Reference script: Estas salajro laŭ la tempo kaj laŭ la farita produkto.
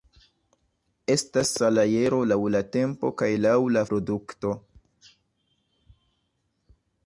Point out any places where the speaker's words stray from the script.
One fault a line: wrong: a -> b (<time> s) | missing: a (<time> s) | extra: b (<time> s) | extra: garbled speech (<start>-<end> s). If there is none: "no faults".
missing: farita (3.9 s)